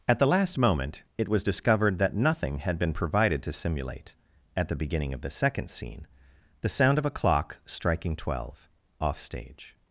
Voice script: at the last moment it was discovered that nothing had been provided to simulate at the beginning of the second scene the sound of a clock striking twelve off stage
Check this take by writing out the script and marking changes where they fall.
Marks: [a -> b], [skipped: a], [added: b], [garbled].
at the last moment it was discovered that nothing had been provided to simulate at the beginning of the second scene the sound of a clock striking twelve off stage